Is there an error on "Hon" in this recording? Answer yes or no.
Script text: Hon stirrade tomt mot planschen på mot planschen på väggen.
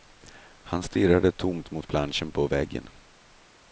yes